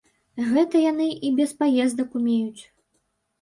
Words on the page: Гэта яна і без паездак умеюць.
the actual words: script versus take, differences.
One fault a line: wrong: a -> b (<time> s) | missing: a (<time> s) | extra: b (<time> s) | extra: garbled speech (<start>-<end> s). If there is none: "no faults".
wrong: яна -> яны (0.9 s)